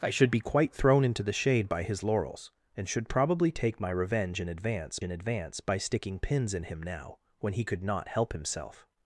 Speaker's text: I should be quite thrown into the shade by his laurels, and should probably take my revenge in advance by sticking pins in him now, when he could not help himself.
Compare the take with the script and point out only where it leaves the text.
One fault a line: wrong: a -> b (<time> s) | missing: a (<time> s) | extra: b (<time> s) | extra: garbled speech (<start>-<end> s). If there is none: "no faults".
extra: in advance (5.0 s)